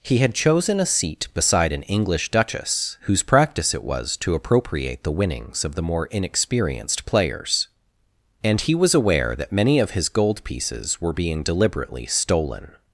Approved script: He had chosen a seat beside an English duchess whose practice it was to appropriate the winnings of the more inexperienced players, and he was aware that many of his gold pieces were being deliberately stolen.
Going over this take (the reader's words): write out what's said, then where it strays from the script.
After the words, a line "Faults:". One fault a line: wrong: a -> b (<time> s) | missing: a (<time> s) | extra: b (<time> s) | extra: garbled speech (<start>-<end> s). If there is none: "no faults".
He had chosen a seat beside an English duchess whose practice it was to appropriate the winnings of the more inexperienced players, and he was aware that many of his gold pieces were being deliberately stolen.
Faults:
no faults